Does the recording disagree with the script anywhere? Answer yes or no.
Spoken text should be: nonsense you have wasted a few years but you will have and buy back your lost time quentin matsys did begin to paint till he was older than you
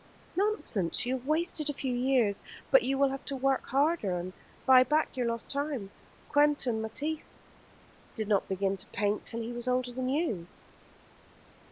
yes